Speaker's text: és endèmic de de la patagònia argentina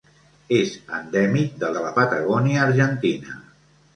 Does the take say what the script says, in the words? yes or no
yes